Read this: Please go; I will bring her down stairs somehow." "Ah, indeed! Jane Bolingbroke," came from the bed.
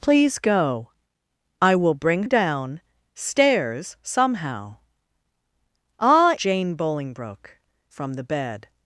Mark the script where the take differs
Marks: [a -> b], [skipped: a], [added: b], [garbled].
Please go; I will bring [skipped: her] down stairs somehow." "Ah, [skipped: indeed!] Jane Bolingbroke," [skipped: came] from the bed.